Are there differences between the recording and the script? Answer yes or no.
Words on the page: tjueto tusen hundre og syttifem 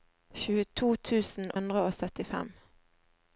no